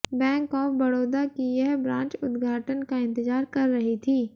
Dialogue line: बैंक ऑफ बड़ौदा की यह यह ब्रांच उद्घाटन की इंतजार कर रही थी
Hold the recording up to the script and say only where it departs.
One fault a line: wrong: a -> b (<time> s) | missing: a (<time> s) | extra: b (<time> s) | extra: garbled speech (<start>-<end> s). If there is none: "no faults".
missing: यह (1.8 s)
wrong: की -> का (2.8 s)